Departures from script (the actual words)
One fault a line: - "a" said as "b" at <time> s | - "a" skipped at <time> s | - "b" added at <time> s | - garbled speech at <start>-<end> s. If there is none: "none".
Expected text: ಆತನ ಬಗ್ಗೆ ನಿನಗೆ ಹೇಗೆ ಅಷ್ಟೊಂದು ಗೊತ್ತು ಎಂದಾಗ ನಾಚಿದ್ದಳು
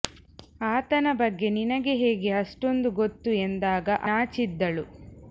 none